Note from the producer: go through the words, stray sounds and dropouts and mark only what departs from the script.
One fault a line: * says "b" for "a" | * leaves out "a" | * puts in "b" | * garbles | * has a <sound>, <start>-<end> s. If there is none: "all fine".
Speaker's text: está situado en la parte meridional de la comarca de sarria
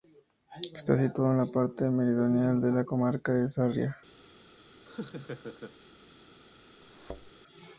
* has a laugh, 4.9-5.8 s
* has a thud, 6.8-7.3 s